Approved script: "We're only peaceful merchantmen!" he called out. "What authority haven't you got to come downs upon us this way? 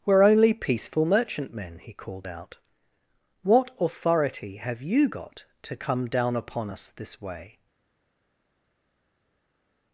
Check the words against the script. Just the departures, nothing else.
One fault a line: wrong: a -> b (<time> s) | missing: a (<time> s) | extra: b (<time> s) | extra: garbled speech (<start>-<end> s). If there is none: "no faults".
wrong: haven't -> have (4.5 s)
wrong: downs -> down (6.1 s)